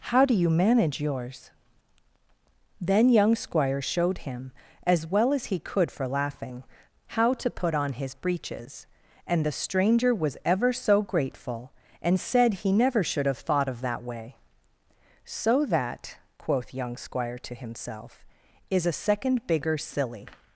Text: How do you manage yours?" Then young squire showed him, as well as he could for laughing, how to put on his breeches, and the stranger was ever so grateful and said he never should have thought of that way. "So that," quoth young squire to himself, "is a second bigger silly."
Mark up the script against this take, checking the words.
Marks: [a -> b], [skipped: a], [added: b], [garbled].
How do you manage yours?" Then young squire showed him, as well as he could for laughing, how to put on his breeches, and the stranger was ever so grateful and said he never should have thought of that way. "So that," quoth young squire to himself, "is a second bigger silly."